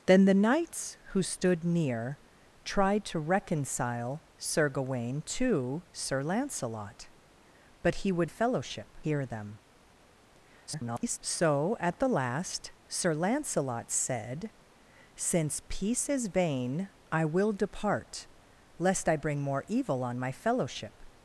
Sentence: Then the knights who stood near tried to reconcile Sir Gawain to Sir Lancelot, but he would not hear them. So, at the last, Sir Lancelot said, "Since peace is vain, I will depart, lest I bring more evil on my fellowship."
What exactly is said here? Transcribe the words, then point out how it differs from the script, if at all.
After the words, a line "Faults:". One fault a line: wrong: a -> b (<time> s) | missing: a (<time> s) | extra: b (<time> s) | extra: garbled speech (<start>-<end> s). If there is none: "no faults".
Then the knights who stood near tried to reconcile Sir Gawain to Sir Lancelot, but he would fellowship hear them. [garbled] So, at the last, Sir Lancelot said, "Since peace is vain, I will depart, lest I bring more evil on my fellowship."
Faults:
wrong: not -> fellowship (8.3 s)
extra: garbled speech (10.7-11.2 s)